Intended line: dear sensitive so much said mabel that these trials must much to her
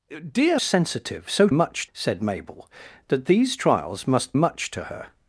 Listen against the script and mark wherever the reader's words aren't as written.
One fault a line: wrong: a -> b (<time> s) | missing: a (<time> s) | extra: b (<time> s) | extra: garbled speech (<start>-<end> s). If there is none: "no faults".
no faults